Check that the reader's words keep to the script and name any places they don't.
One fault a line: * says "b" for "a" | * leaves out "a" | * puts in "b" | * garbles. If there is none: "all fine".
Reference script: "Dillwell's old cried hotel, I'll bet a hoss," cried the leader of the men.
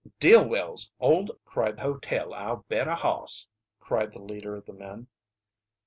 all fine